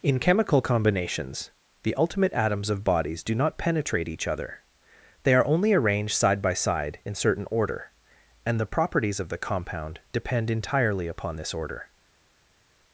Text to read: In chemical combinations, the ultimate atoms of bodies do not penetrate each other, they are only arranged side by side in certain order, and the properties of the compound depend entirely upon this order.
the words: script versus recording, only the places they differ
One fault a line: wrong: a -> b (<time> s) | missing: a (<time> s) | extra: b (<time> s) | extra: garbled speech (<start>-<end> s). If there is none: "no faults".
no faults